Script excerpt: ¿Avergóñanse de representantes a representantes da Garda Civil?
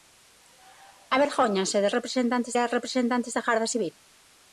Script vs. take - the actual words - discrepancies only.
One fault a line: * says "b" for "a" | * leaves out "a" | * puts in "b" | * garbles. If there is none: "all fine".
all fine